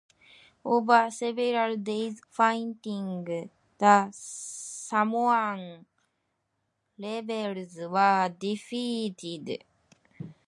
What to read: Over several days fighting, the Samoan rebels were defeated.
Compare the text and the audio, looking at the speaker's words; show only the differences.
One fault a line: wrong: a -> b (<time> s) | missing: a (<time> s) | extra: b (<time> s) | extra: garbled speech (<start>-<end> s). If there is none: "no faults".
no faults